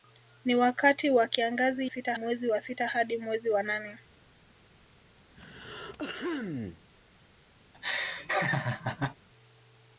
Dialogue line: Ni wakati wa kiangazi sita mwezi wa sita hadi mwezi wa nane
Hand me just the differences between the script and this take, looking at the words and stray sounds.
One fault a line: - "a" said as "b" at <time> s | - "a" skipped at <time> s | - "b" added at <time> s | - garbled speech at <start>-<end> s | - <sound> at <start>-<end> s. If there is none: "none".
- throat clearing at 5.3-6.8 s
- laugh at 7.7-9.2 s